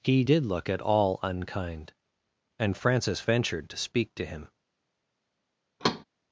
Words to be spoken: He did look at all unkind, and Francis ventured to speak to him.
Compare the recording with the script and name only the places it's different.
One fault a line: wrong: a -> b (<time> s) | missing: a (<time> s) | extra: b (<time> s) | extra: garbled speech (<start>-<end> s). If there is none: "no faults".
no faults